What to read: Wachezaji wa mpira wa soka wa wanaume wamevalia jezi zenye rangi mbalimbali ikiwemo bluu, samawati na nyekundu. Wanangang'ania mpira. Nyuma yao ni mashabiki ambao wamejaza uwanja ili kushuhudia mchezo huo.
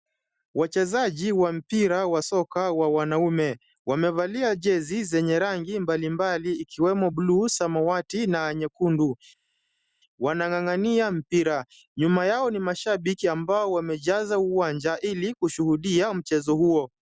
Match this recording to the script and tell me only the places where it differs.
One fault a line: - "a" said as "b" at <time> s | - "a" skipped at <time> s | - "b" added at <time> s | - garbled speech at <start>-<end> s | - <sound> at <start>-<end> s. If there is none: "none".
none